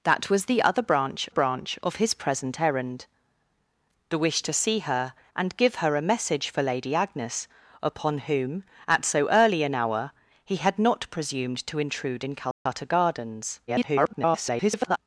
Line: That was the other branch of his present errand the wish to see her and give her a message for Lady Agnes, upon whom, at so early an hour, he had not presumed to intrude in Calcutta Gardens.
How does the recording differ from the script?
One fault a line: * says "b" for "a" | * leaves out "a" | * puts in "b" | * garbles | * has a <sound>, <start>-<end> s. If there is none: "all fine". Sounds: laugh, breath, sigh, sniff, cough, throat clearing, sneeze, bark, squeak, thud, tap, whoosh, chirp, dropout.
* puts in "branch"
* has a dropout, 12.5-12.7 s
* garbles